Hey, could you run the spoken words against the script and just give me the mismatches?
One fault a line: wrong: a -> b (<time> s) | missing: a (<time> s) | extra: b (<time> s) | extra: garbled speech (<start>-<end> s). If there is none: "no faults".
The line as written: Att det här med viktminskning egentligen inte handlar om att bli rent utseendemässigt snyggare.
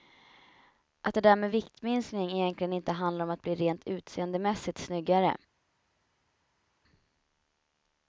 wrong: här -> där (1.2 s)